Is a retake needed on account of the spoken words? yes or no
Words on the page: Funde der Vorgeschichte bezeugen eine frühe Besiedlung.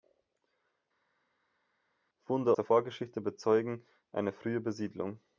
no